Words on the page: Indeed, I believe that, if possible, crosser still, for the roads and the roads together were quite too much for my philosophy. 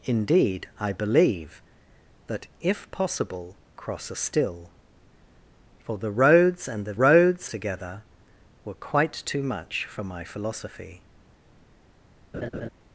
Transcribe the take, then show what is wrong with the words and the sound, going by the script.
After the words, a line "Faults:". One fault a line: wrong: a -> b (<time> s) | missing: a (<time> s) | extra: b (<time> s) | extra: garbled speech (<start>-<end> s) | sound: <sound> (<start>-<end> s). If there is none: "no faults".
Indeed, I believe that, if possible, crosser still, for the roads and the roads together were quite too much for my philosophy.
Faults:
sound: laugh (12.3-12.7 s)